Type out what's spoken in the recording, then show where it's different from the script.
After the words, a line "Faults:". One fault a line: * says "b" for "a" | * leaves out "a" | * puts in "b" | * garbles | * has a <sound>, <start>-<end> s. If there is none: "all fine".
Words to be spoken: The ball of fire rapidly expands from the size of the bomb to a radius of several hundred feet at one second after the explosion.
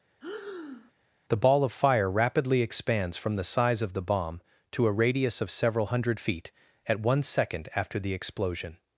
The ball of fire rapidly expands from the size of the bomb to a radius of several hundred feet at one second after the explosion.
Faults:
* has a breath, 0.2-0.9 s